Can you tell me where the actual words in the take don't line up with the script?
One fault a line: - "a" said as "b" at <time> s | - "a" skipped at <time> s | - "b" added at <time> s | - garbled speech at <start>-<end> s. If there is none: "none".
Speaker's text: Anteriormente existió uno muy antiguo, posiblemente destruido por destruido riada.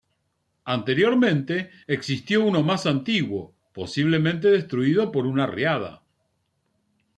- "muy" said as "más" at 2.6 s
- "destruido" said as "una" at 5.3 s